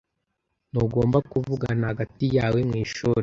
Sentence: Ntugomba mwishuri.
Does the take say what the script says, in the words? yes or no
no